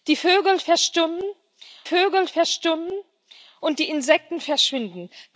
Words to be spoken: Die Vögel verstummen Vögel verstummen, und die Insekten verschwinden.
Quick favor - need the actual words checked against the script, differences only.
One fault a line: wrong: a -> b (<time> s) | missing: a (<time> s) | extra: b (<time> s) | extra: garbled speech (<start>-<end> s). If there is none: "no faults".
no faults